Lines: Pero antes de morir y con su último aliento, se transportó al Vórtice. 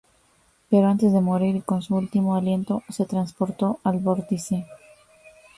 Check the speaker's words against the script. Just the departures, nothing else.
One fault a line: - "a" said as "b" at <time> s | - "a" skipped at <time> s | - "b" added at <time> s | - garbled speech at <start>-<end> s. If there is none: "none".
none